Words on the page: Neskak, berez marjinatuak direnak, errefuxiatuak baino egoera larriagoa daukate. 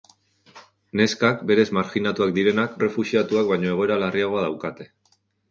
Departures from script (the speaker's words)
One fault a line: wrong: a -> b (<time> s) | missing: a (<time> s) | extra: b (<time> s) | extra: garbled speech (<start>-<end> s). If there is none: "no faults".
no faults